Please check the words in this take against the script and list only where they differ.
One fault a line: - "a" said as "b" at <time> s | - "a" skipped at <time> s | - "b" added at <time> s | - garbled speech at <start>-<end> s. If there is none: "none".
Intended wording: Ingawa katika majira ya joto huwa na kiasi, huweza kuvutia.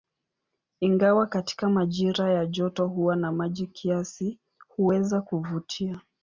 - "maji" added at 3.3 s